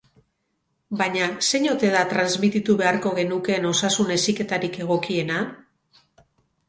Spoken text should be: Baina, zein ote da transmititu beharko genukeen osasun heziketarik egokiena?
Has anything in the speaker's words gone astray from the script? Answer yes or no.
no